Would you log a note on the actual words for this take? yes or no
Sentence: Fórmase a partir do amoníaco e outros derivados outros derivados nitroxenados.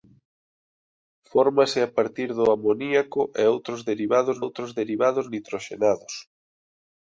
no